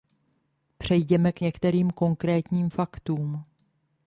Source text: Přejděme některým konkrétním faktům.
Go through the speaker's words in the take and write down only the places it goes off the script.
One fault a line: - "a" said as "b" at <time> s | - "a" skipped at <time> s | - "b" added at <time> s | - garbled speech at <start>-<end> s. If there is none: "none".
- "k" added at 1.3 s